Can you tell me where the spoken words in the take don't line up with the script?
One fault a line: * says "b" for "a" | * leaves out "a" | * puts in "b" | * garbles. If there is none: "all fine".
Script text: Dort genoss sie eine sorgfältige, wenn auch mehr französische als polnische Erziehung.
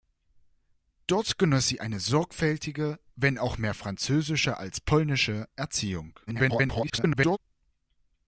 * garbles